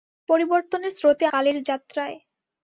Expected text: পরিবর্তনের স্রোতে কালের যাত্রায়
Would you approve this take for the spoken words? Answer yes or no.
yes